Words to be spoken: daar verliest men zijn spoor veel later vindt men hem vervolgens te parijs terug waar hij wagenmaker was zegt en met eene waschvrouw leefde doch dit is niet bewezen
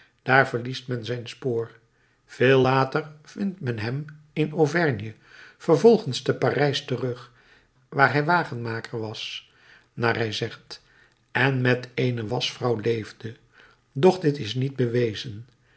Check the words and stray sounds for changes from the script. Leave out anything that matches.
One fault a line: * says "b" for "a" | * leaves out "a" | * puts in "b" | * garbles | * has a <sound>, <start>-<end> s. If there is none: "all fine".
* puts in "in auvergne"
* puts in "naar hij"